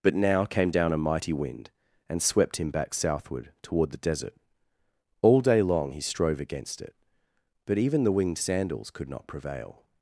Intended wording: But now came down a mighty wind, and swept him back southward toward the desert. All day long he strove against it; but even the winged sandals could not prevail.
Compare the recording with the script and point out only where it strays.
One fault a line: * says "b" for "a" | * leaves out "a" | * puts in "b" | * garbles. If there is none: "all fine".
all fine